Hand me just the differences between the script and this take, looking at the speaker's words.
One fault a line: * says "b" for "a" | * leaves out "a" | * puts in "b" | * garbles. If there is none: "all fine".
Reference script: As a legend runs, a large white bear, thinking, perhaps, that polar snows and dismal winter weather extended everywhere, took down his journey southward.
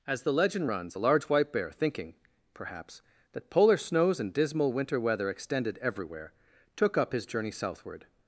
* says "the" for "a"
* says "up" for "down"